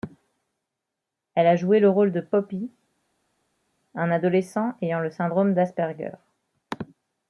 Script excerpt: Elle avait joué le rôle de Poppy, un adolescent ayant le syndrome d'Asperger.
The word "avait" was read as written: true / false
false